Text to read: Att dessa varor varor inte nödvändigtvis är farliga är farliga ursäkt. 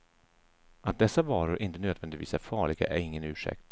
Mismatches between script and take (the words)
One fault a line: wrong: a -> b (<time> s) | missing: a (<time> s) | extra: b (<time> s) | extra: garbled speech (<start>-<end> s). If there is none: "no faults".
missing: varor (1.6 s)
wrong: farliga -> ingen (3.0 s)